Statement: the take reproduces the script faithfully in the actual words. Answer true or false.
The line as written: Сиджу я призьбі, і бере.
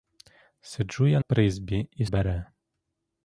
true